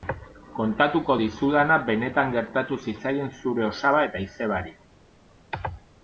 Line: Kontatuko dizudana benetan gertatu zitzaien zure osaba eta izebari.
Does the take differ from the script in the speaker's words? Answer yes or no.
no